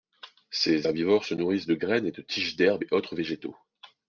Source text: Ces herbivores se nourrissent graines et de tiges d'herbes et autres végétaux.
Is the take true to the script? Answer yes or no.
no